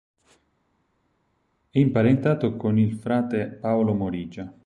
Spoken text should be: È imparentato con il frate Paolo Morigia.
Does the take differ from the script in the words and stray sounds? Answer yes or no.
no